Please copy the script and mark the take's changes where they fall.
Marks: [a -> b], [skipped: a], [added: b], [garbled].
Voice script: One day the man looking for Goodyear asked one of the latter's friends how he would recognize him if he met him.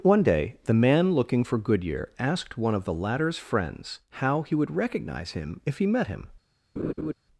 One day the man looking for Goodyear asked one of the latter's friends how he would recognize him if he met him.